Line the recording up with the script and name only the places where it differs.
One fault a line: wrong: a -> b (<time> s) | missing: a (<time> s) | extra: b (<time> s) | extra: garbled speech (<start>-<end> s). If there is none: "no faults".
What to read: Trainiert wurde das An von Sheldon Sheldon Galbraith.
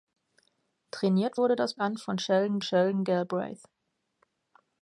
no faults